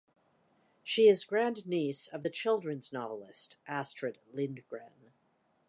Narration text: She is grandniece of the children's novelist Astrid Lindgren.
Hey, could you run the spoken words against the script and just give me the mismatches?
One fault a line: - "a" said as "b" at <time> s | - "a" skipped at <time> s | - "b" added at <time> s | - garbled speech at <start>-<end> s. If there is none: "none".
none